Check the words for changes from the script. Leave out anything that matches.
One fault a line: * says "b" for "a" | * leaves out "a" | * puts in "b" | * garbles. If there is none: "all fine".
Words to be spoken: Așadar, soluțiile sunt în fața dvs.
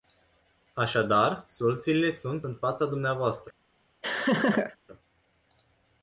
all fine